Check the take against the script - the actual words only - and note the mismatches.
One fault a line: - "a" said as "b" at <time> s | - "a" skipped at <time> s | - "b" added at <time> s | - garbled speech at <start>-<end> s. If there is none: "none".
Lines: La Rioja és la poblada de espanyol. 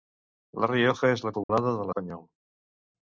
none